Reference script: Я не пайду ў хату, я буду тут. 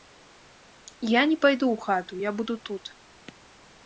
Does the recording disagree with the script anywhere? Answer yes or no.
no